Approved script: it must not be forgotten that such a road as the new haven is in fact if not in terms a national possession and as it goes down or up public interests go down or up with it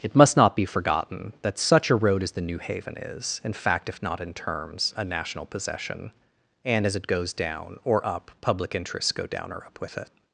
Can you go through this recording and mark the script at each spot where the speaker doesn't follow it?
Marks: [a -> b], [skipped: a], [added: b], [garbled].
it must not be forgotten that such a road as the new haven is in fact if not in terms a national possession and as it goes down or up public interests go down or up with it